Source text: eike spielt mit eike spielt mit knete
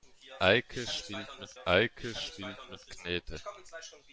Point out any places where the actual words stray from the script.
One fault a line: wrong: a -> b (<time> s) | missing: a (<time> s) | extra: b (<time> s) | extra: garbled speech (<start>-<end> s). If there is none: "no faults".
no faults